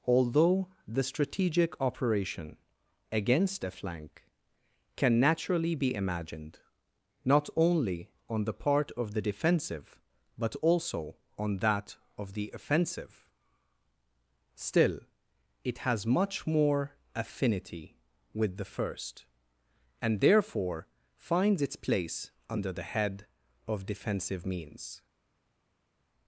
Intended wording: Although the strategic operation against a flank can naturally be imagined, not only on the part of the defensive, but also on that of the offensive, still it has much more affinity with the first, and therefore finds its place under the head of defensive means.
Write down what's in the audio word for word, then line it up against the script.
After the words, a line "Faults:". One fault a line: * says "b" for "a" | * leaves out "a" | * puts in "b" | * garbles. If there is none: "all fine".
Although the strategic operation against a flank can naturally be imagined, not only on the part of the defensive, but also on that of the offensive, still it has much more affinity with the first, and therefore finds its place under the head of defensive means.
Faults:
all fine